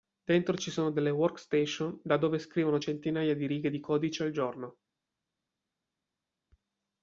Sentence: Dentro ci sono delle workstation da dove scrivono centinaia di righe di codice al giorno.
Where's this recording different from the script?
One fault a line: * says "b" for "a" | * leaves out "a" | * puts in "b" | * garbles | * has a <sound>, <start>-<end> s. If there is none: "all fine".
all fine